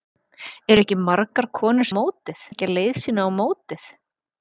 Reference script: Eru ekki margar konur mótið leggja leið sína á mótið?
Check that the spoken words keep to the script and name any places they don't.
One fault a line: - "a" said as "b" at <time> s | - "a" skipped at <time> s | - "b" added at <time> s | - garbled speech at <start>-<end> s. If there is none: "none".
none